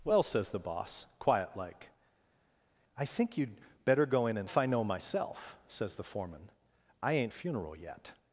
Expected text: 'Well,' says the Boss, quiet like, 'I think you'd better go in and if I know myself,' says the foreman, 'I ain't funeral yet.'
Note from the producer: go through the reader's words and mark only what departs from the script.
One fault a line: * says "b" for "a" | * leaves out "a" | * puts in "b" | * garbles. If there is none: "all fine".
all fine